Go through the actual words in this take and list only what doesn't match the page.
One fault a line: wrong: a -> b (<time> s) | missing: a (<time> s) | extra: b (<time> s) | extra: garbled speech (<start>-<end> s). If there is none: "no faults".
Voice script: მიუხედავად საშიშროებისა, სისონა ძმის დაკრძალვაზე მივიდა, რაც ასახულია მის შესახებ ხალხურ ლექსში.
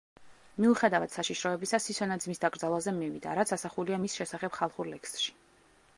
no faults